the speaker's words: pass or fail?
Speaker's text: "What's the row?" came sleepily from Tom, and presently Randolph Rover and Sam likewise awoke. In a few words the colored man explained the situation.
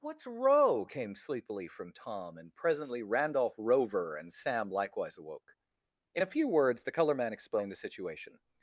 fail